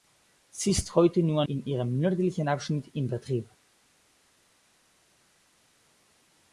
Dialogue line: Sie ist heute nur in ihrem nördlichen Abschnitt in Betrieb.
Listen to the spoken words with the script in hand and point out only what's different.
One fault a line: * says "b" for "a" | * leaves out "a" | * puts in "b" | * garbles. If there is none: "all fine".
all fine